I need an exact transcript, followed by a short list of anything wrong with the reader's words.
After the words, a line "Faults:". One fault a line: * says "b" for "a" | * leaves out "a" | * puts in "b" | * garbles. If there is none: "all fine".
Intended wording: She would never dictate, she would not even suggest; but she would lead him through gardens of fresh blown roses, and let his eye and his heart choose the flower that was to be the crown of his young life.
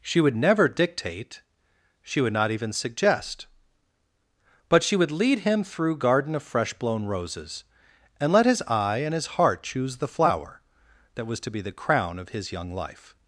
She would never dictate, she would not even suggest; but she would lead him through garden of fresh blown roses, and let his eye and his heart choose the flower that was to be the crown of his young life.
Faults:
* says "garden" for "gardens"